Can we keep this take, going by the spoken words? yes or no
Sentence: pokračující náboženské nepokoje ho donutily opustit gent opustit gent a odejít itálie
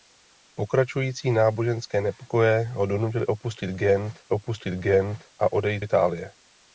yes